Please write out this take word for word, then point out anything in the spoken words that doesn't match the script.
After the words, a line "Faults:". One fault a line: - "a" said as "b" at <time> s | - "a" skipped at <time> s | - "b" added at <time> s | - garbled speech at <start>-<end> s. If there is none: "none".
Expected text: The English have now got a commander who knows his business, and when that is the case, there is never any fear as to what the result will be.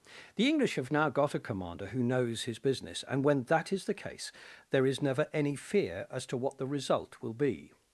The English have now got a commander who knows his business, and when that is the case, there is never any fear as to what the result will be.
Faults:
none